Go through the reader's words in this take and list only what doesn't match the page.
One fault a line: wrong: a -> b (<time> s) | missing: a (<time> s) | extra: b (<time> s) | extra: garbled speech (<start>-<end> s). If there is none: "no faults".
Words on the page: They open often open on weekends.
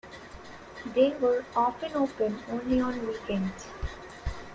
wrong: open -> were (1.2 s)
extra: only (2.5 s)